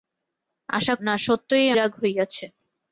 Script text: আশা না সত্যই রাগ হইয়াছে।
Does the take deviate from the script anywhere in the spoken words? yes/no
no